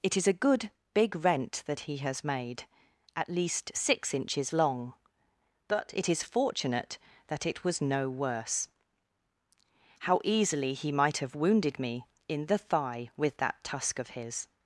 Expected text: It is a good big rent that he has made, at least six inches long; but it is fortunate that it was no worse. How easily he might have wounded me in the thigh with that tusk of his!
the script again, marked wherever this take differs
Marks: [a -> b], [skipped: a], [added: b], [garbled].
It is a good big rent that he has made, at least six inches long; but it is fortunate that it was no worse. How easily he might have wounded me in the thigh with that tusk of his!